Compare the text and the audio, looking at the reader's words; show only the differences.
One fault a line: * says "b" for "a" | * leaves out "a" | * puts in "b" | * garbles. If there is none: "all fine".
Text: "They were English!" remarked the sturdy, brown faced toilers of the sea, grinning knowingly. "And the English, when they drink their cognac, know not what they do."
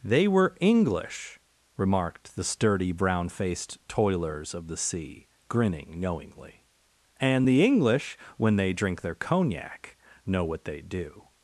* leaves out "not"